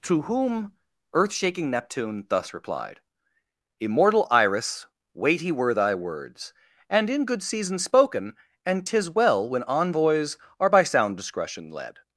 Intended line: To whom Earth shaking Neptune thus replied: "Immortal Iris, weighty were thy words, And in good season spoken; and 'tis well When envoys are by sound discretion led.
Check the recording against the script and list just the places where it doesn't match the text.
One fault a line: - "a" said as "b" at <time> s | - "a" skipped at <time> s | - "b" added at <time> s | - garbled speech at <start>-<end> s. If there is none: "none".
none